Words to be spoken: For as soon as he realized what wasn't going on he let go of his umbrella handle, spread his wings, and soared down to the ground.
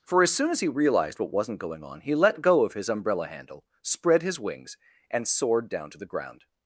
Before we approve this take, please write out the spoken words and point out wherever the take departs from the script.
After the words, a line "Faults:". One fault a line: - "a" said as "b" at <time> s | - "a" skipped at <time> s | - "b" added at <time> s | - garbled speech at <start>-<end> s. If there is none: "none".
For as soon as he realized what wasn't going on he let go of his umbrella handle, spread his wings, and soared down to the ground.
Faults:
none